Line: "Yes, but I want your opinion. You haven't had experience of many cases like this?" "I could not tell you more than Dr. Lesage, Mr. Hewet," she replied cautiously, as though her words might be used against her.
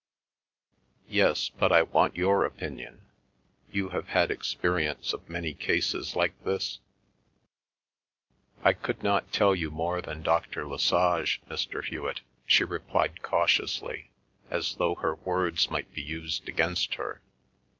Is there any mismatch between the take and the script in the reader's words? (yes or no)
yes